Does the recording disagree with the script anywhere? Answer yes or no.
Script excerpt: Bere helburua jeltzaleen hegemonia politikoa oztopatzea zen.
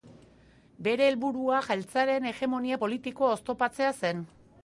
no